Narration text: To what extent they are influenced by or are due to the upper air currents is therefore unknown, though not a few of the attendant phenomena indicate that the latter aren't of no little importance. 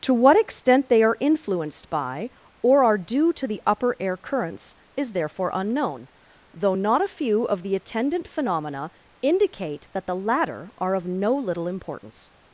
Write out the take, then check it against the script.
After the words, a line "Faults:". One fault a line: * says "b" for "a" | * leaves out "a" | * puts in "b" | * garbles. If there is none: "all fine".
To what extent they are influenced by or are due to the upper air currents is therefore unknown, though not a few of the attendant phenomena indicate that the latter are of no little importance.
Faults:
* says "are" for "aren't"